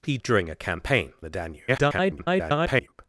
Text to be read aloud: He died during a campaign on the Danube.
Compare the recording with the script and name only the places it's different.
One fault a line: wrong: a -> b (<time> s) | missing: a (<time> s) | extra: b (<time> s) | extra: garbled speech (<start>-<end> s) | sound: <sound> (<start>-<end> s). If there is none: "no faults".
missing: died (0.2 s)
missing: on (1.1 s)
extra: garbled speech (1.7-2.9 s)